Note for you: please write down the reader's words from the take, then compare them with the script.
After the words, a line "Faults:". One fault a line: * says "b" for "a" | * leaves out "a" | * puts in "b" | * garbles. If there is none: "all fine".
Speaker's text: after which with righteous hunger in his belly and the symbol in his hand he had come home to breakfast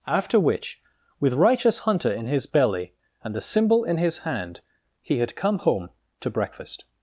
after which with righteous hunter in his belly and the symbol in his hand he had come home to breakfast
Faults:
* says "hunter" for "hunger"